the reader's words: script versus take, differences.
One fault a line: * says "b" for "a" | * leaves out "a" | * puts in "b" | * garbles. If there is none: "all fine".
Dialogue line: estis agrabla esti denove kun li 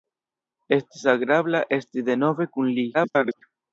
* garbles